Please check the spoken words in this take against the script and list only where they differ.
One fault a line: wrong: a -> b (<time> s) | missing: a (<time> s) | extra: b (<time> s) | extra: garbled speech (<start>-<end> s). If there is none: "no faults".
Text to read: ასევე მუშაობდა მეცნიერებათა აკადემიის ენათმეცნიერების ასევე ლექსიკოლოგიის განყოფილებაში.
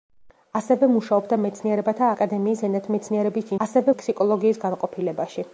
no faults